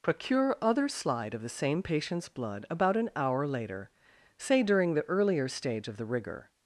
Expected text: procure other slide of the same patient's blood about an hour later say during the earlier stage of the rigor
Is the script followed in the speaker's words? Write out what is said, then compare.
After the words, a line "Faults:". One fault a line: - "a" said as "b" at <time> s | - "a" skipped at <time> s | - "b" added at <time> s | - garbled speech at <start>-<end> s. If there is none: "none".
procure other slide of the same patient's blood about an hour later say during the earlier stage of the rigor
Faults:
none